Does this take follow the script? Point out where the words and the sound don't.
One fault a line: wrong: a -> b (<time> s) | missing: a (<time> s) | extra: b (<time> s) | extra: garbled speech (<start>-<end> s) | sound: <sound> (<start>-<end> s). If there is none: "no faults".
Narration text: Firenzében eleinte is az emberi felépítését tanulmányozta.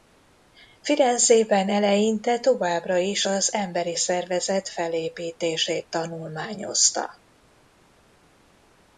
extra: továbbra (2.4 s)
extra: szervezet (3.9 s)